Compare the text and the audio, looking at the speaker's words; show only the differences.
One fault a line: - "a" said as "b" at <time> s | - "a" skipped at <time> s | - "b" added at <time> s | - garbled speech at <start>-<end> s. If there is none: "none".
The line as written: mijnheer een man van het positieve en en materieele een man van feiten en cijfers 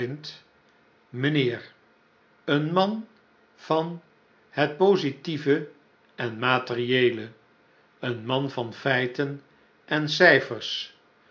- "en" skipped at 6.4 s